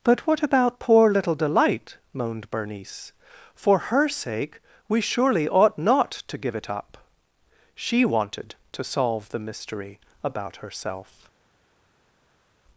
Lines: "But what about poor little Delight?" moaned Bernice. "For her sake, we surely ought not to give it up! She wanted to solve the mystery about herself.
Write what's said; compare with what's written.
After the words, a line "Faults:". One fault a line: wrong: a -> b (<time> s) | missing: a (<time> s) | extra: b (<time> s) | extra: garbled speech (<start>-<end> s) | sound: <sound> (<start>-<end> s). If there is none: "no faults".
"But what about poor little Delight?" moaned Bernice. "For her sake, we surely ought not to give it up! She wanted to solve the mystery about herself.
Faults:
no faults